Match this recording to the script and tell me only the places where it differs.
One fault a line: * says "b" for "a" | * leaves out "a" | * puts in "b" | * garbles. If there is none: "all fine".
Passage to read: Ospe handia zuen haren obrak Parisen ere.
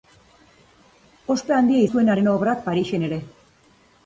all fine